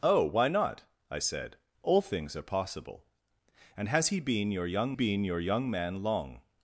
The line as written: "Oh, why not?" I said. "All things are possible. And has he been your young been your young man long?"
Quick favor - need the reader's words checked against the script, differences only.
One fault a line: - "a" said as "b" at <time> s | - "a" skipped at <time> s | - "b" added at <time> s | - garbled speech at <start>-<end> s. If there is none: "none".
none